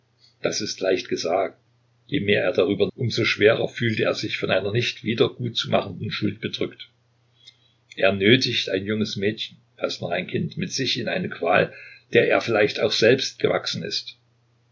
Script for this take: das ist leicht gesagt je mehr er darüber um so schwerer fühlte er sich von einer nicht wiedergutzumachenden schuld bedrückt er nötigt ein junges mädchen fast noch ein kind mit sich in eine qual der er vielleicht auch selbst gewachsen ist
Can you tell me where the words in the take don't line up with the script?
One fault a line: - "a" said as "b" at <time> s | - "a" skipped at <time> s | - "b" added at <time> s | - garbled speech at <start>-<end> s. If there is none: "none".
none